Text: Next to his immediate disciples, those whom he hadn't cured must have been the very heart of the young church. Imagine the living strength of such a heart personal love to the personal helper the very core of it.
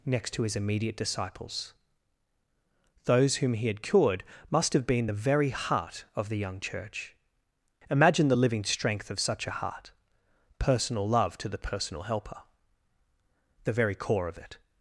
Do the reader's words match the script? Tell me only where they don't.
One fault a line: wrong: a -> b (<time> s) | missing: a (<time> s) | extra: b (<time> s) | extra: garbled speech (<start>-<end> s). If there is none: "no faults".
wrong: hadn't -> had (3.7 s)